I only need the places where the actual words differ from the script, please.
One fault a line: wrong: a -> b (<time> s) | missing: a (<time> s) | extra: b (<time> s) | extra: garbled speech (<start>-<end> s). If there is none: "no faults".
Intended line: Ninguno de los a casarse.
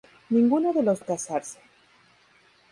no faults